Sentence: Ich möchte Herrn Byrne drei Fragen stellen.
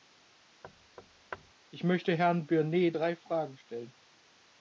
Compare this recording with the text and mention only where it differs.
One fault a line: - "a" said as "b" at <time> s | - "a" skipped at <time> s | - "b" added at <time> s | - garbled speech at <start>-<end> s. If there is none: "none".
none